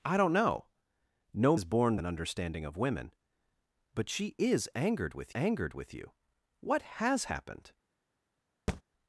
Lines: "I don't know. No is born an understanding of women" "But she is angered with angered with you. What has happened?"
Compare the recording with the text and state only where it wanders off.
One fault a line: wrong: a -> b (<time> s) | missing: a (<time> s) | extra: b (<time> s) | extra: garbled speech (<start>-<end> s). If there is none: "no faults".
no faults